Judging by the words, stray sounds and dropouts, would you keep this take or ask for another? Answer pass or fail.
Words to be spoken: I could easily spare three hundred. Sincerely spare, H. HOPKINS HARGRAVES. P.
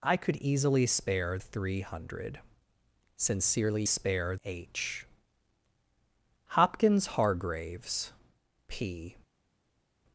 pass